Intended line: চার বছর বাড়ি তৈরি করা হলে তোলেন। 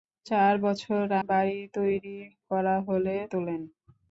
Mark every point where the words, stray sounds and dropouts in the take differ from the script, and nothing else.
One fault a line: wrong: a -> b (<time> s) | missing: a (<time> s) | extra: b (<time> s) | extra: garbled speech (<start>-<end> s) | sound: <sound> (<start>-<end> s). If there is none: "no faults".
no faults